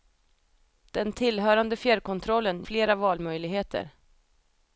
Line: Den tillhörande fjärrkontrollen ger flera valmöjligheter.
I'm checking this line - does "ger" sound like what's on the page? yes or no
no